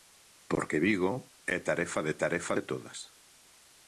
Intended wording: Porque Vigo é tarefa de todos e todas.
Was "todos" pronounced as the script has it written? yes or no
no